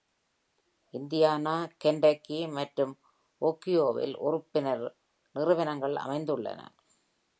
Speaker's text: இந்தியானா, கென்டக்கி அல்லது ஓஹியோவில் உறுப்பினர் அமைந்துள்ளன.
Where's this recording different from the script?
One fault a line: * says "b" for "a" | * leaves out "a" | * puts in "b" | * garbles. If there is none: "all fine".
* says "மற்றும்" for "அல்லது"
* puts in "நிறுவனங்கள்"